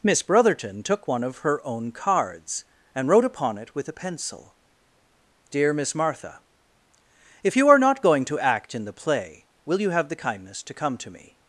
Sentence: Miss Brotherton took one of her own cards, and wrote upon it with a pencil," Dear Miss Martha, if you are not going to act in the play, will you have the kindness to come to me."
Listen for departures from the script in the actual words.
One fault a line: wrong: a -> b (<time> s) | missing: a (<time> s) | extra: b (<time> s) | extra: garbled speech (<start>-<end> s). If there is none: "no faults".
no faults